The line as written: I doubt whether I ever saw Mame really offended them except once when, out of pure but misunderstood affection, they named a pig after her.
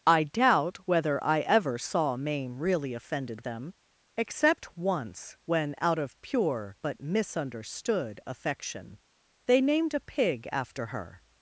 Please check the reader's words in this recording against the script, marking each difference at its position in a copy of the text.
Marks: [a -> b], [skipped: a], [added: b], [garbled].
I doubt whether I ever saw Mame really offended them except once when, out of pure but misunderstood affection, they named a pig after her.